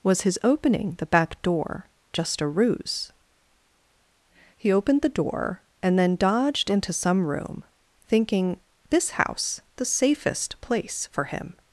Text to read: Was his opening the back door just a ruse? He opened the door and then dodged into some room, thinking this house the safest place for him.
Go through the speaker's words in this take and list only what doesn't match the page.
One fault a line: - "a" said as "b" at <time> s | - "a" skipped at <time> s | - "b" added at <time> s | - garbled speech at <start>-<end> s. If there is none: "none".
none